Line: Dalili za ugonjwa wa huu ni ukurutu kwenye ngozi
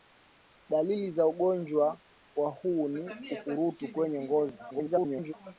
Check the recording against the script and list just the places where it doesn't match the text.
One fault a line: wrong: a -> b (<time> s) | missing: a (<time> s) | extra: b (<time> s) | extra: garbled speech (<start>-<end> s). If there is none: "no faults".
extra: garbled speech (4.7-5.3 s)